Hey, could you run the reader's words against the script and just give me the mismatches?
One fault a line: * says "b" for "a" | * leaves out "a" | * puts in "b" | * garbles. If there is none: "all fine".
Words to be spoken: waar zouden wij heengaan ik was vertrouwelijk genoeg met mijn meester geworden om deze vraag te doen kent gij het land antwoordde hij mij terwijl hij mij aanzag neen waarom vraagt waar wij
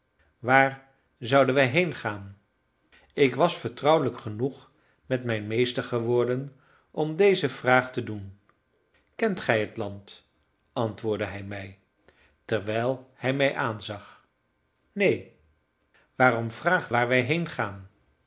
all fine